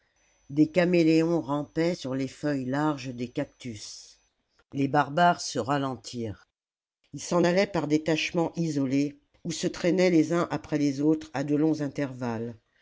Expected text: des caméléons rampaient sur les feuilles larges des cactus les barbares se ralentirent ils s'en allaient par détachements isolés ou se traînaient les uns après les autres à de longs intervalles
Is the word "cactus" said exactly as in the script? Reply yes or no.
yes